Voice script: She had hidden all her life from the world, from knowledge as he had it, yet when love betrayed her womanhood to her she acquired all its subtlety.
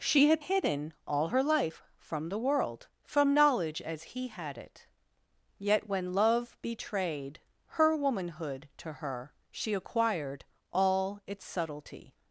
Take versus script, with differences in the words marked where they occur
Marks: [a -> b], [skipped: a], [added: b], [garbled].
She had hidden all her life from the world, from knowledge as he had it, yet when love betrayed her womanhood to her she acquired all its subtlety.